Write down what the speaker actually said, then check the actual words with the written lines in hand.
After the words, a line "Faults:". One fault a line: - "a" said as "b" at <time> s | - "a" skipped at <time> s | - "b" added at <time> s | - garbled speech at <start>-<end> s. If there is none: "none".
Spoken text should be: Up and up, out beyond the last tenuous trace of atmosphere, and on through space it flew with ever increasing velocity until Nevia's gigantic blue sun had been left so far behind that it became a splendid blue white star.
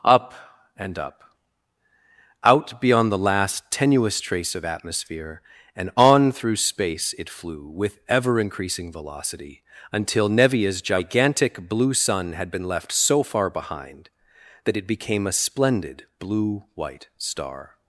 Up and up, out beyond the last tenuous trace of atmosphere, and on through space it flew with ever increasing velocity until Nevia's gigantic blue sun had been left so far behind that it became a splendid blue white star.
Faults:
none